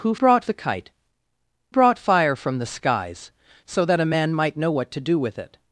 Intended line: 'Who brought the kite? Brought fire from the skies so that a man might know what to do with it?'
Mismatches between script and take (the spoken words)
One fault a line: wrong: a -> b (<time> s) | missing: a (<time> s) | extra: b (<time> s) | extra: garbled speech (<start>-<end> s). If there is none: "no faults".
no faults